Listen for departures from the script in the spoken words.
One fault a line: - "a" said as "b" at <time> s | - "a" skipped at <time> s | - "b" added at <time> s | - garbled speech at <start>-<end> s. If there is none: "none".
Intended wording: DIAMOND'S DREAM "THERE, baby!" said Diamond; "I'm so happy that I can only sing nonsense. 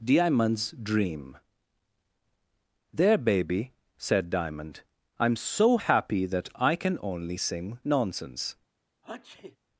none